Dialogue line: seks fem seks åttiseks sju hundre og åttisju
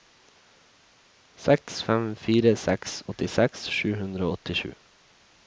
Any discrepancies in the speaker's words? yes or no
yes